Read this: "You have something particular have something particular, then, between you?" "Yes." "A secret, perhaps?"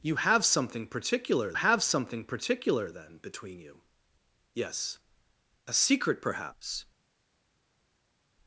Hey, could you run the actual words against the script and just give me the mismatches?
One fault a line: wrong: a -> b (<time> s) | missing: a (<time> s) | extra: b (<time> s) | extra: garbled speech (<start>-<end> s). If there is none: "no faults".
no faults